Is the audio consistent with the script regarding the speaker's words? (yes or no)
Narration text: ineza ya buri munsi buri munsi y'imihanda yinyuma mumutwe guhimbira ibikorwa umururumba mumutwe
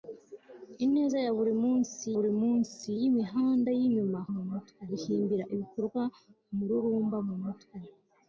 yes